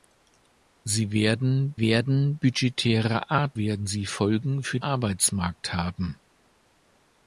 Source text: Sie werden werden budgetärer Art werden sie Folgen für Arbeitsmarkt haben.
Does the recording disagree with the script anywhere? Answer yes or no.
no